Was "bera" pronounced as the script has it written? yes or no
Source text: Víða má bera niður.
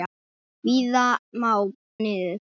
no